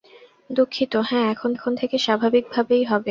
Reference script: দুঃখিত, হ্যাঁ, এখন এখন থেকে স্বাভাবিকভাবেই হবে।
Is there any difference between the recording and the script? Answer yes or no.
no